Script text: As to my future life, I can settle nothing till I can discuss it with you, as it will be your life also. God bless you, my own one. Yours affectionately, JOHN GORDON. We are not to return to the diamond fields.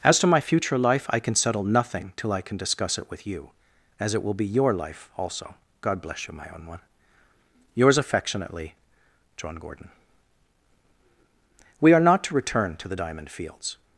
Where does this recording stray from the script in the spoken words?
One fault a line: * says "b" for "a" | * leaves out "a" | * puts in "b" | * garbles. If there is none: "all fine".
all fine